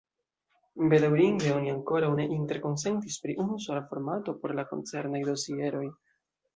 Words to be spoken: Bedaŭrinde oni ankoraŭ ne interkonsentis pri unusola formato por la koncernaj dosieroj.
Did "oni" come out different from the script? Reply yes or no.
no